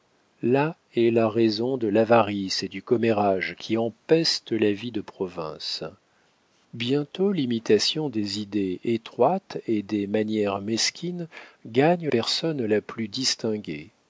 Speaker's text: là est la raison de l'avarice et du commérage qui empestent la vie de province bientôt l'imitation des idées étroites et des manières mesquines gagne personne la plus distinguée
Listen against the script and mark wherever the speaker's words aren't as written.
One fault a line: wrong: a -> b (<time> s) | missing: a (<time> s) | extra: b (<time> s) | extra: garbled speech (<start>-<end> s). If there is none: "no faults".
no faults